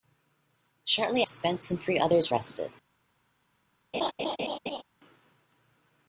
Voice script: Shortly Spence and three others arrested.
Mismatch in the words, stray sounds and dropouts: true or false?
true